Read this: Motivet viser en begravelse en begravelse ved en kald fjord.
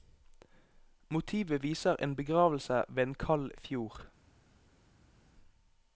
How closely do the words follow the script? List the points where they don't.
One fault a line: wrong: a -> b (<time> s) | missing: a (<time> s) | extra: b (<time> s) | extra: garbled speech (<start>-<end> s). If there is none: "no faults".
missing: en begravelse (2.8 s)